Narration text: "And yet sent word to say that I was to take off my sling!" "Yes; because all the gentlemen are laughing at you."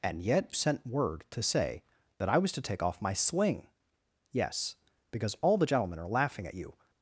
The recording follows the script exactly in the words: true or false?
true